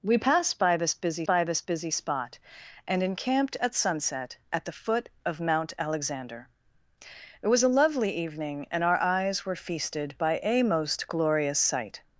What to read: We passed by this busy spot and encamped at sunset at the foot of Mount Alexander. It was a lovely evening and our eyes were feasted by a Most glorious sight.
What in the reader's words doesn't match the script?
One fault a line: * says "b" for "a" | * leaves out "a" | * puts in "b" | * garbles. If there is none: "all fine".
* puts in "by this busy"